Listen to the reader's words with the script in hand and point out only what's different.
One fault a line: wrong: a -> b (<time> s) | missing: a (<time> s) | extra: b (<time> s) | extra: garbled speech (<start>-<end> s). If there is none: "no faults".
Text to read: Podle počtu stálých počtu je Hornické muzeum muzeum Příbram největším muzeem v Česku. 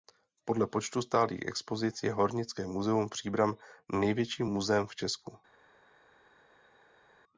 wrong: počtu -> expozic (1.4 s)
missing: muzeum (3.1 s)